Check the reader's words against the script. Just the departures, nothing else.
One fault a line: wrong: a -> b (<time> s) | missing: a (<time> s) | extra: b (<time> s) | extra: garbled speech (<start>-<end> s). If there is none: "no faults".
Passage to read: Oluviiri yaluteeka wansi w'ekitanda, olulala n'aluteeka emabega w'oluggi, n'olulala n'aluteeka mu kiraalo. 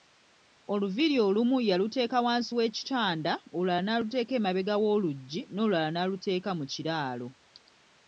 extra: olumu (1.3 s)